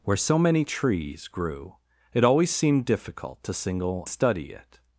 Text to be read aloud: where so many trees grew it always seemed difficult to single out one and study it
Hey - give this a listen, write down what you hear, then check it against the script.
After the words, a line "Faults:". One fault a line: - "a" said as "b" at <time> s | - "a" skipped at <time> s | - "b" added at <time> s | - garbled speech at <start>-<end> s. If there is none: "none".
where so many trees grew it always seemed difficult to single study it
Faults:
- "out one and" skipped at 4.1 s